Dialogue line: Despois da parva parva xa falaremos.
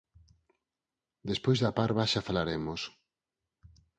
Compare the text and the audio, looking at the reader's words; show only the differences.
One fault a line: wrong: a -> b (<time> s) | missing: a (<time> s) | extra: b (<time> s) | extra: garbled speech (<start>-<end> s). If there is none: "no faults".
missing: parva (2.1 s)